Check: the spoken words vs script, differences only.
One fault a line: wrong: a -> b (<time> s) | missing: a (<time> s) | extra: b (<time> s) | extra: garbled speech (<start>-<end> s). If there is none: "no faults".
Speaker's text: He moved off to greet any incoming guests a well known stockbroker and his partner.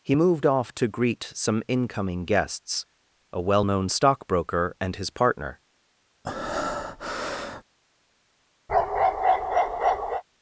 wrong: any -> some (1.3 s)